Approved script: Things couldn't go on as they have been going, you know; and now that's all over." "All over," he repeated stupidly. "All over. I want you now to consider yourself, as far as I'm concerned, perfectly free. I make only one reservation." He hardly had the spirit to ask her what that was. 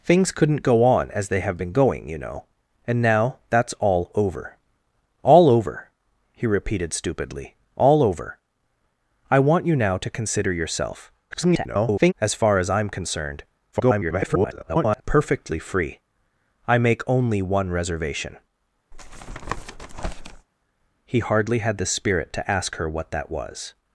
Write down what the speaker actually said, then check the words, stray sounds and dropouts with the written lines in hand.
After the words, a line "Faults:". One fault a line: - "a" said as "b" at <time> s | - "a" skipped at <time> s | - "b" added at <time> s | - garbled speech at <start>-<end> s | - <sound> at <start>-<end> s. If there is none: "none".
Things couldn't go on as they have been going, you know; and now that's all over." "All over," he repeated stupidly. "All over. I want you now to consider yourself, [garbled] as far as I'm concerned, [garbled] perfectly free. I make only one reservation." He hardly had the spirit to ask her what that was.
Faults:
- garbled speech at 11.3-12.1 s
- garbled speech at 13.7-15.0 s
- tap at 18.9-20.5 s